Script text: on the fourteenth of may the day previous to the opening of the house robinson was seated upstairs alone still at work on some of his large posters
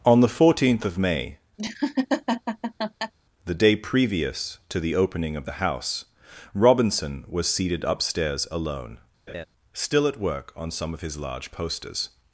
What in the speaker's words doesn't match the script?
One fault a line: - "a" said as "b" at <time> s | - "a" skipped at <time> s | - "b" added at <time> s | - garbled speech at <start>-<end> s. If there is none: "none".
none